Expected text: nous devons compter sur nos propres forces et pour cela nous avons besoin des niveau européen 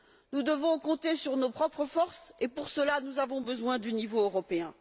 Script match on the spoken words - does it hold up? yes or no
no